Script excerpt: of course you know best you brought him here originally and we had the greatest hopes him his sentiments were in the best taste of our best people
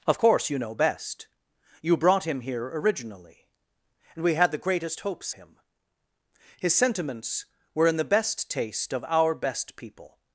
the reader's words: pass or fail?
pass